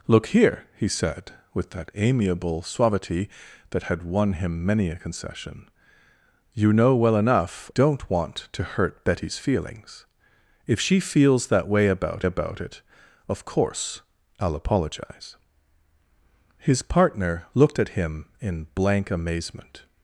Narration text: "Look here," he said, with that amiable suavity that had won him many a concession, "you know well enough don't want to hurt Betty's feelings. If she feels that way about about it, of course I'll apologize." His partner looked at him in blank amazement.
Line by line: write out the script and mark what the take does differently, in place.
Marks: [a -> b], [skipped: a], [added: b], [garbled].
"Look here," he said, with that amiable suavity that had won him many a concession, "you know well enough don't want to hurt Betty's feelings. If she feels that way about about it, of course I'll apologize." His partner looked at him in blank amazement.